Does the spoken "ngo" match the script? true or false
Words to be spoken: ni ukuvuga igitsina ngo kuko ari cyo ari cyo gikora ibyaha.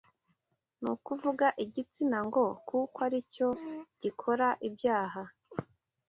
true